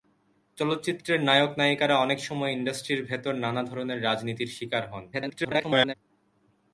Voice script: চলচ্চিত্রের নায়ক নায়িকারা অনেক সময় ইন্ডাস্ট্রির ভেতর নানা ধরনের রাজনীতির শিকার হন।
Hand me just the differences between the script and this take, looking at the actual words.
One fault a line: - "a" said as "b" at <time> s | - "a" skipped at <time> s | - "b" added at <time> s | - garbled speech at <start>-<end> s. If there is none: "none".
- garbled speech at 5.1-5.9 s